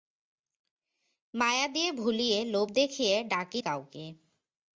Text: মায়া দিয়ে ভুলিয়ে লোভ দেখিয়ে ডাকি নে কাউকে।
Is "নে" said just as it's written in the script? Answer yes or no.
no